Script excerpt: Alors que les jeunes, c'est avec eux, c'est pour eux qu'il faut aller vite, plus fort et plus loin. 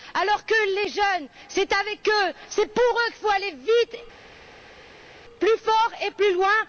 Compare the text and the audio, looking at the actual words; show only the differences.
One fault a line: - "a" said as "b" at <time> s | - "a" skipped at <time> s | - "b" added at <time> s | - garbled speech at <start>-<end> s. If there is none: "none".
none